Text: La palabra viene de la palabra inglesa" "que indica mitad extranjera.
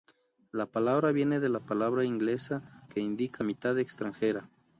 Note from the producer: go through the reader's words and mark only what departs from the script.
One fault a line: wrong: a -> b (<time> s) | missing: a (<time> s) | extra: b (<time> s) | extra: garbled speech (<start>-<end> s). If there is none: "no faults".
no faults